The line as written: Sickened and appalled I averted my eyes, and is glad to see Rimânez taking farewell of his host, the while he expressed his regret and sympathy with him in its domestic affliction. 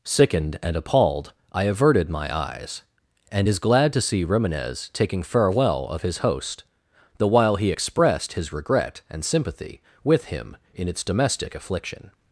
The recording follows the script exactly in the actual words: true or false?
true